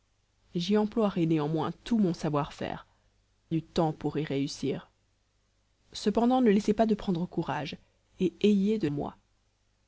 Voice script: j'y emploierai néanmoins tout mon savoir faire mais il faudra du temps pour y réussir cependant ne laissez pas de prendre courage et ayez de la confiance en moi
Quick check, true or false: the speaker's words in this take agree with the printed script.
false